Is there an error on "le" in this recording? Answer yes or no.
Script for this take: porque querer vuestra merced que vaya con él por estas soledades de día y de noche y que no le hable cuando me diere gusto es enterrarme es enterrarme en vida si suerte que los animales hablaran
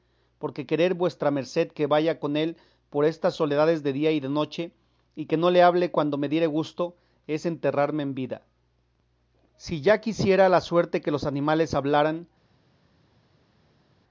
no